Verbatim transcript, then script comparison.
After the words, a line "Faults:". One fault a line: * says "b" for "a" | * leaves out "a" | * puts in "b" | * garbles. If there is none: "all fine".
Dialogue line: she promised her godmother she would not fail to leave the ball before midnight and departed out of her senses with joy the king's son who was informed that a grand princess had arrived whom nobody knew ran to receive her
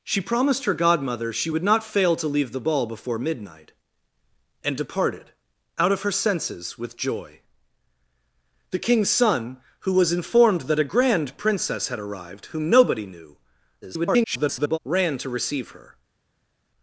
she promised her godmother she would not fail to leave the ball before midnight and departed out of her senses with joy the king's son who was informed that a grand princess had arrived whom nobody knew [garbled] ran to receive her
Faults:
* garbles